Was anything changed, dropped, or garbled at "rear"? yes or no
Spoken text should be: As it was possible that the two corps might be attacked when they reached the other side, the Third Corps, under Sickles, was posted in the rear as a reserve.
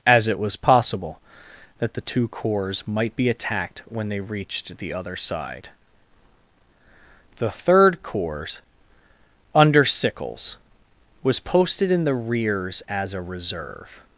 yes